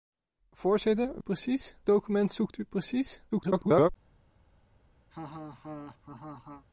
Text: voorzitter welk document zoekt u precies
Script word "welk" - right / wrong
wrong